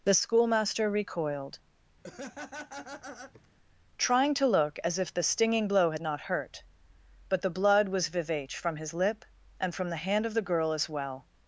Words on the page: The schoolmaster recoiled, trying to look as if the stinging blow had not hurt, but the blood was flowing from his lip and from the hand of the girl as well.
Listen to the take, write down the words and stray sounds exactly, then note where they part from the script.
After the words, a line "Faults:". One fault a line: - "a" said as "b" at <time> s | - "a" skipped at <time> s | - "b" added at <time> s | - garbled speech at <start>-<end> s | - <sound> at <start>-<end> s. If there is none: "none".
The schoolmaster recoiled, trying to look as if the stinging blow had not hurt, but the blood was vivace from his lip and from the hand of the girl as well.
Faults:
- laugh at 2.0-3.5 s
- "flowing" said as "vivace" at 8.1 s